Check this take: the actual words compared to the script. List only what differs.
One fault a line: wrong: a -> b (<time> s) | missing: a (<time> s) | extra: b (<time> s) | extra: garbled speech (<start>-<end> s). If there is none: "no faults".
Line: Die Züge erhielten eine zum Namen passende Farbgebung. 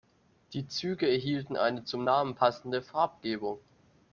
no faults